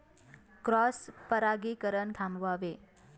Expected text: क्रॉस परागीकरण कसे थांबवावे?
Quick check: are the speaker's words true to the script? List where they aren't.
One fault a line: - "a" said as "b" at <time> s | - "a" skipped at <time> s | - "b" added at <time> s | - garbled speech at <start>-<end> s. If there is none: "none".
- "कसे" skipped at 2.1 s